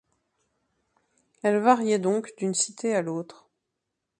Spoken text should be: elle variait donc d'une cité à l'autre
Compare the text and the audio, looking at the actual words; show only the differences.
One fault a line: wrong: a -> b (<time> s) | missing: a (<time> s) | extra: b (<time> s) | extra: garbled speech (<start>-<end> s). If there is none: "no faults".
no faults